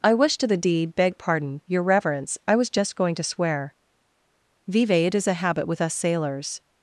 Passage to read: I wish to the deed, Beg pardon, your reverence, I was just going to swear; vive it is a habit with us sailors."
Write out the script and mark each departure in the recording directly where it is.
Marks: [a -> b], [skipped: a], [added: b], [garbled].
I wish to the deed, Beg pardon, your reverence, I was just going to swear; vive it is a habit with us sailors."